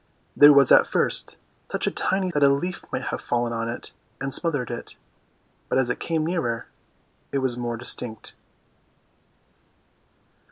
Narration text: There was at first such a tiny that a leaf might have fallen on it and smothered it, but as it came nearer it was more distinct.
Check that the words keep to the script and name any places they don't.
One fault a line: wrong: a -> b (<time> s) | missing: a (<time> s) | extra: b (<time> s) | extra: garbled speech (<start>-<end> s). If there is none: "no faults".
no faults